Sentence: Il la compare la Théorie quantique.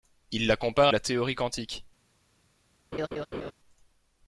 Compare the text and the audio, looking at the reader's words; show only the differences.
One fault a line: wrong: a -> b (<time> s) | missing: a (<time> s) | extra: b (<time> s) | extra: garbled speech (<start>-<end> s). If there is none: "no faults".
no faults